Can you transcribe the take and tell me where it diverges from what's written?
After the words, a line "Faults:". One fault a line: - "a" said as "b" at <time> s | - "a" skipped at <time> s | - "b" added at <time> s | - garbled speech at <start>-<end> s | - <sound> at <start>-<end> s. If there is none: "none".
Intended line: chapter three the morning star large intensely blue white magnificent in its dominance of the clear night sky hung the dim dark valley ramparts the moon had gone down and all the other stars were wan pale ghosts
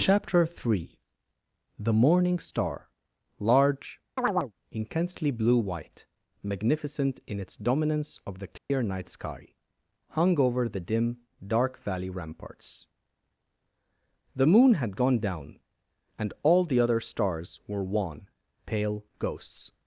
chapter three the morning star large intensely blue white magnificent in its dominance of the clear night sky hung over the dim dark valley ramparts the moon had gone down and all the other stars were wan pale ghosts
Faults:
- chirp at 4.2-4.5 s
- dropout at 8.6-8.7 s
- "over" added at 10.4 s